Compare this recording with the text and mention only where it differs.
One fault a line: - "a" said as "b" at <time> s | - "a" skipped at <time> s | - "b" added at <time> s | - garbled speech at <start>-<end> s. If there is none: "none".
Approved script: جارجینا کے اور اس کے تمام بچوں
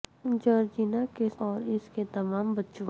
none